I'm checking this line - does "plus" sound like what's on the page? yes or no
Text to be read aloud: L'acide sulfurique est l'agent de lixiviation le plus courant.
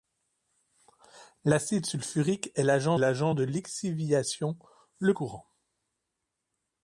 no